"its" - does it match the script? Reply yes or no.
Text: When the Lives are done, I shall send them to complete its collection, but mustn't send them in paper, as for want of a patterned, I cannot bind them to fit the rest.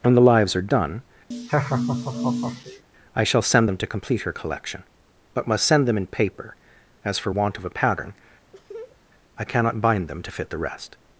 no